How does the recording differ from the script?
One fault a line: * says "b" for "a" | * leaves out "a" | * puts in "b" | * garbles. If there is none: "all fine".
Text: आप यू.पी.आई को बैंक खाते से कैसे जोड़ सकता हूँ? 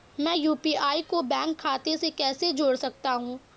* says "मैं" for "आप"